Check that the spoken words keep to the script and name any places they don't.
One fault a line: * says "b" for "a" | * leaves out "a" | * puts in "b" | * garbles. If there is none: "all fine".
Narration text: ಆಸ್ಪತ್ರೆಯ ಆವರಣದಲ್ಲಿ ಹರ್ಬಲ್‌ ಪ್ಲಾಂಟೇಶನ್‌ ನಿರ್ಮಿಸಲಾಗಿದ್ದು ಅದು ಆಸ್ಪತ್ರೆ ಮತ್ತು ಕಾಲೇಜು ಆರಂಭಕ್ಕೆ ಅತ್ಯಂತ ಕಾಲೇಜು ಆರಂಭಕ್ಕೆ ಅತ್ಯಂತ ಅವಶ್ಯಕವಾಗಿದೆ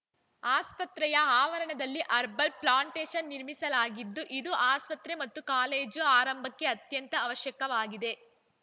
* says "ಇದು" for "ಅದು"
* leaves out "ಕಾಲೇಜು ಆರಂಭಕ್ಕೆ ಅತ್ಯಂತ"